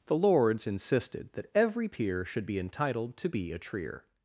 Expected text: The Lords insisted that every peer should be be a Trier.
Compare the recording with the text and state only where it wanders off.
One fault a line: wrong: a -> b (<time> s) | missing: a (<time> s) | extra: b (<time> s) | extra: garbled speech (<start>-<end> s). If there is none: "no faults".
extra: entitled to (2.6 s)